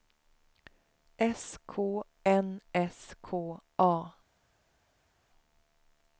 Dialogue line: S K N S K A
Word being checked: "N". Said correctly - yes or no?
yes